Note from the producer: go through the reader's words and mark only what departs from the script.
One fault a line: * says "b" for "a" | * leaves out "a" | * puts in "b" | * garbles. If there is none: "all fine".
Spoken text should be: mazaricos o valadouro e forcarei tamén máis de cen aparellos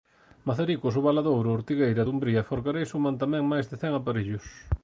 * puts in "ortigueira dumbría"
* puts in "suman"